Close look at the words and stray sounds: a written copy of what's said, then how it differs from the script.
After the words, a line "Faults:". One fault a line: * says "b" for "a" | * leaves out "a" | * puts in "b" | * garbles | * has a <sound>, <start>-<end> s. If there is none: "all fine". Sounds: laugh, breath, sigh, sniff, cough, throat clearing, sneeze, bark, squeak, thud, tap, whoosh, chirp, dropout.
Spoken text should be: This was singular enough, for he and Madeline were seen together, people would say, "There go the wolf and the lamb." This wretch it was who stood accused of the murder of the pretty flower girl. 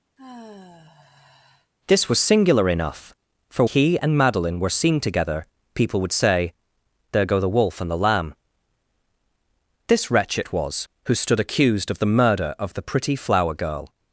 This was singular enough, for he and Madeline were seen together, people would say, "There go the wolf and the lamb." This wretch it was who stood accused of the murder of the pretty flower girl.
Faults:
* has a sigh, 0.2-1.7 s